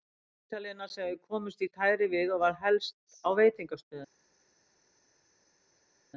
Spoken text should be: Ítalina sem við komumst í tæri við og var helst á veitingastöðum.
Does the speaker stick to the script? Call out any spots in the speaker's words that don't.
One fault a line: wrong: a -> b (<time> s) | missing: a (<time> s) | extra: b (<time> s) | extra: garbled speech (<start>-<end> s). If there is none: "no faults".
no faults